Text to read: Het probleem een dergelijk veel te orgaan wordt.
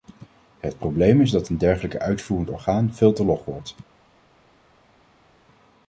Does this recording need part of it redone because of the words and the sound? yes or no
yes